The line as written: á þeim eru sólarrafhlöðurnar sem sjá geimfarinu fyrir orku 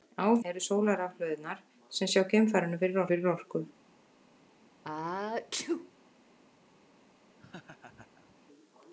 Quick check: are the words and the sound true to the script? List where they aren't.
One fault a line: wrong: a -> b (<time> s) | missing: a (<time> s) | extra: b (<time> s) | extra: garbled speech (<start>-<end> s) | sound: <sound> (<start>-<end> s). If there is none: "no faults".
missing: þeim (0.3 s)
extra: fyrir (3.1 s)
sound: sneeze (4.8-5.9 s)
sound: laugh (7.4-8.4 s)